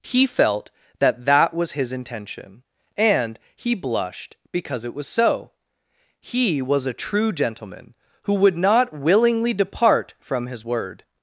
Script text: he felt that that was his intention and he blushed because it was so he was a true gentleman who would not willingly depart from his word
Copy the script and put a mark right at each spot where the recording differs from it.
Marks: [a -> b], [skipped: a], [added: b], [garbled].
he felt that that was his intention and he blushed because it was so he was a true gentleman who would not willingly depart from his word